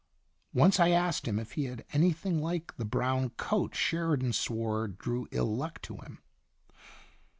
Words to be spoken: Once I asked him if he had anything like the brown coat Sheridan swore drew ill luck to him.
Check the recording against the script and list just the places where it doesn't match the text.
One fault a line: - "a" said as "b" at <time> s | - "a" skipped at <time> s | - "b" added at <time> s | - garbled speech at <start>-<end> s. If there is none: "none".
none